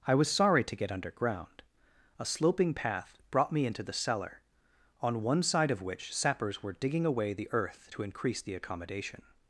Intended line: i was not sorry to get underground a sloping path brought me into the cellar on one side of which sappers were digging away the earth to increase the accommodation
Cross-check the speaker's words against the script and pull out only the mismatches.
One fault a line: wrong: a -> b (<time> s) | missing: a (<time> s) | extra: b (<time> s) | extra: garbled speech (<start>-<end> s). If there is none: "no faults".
missing: not (0.3 s)